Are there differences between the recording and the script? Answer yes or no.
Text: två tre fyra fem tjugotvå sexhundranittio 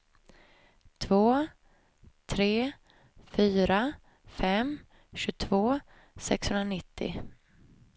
no